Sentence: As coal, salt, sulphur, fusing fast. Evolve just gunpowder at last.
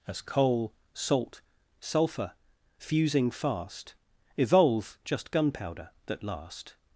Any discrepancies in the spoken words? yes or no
yes